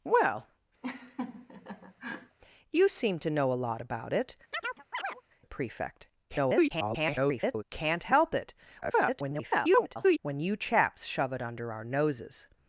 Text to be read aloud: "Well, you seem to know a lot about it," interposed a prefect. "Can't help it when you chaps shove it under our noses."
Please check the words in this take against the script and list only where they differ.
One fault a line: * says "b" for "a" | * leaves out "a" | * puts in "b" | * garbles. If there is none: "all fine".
* leaves out "interposed"
* garbles
* garbles